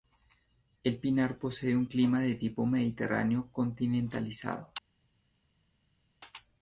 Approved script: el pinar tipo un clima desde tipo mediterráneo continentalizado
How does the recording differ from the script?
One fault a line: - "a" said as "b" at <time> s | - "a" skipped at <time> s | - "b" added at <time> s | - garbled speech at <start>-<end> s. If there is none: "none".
- "tipo" said as "posee" at 1.4 s
- "desde" said as "de" at 2.2 s